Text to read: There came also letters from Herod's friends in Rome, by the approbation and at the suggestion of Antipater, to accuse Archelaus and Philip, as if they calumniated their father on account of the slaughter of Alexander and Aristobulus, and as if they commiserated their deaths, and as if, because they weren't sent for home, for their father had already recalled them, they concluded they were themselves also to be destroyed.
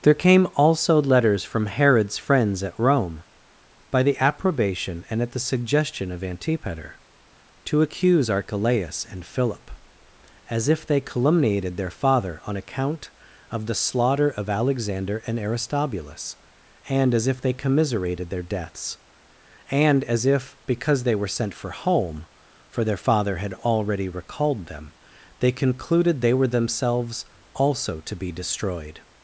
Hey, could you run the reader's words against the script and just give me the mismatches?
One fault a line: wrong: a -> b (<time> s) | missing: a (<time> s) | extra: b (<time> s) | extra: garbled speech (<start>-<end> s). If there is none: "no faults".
wrong: in -> at (2.6 s)
wrong: weren't -> were (21.2 s)